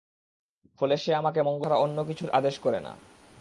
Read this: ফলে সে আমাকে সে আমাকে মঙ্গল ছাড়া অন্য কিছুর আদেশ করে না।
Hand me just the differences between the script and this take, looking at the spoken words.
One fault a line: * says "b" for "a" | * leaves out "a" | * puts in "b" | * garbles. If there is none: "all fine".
* leaves out "সে আমাকে"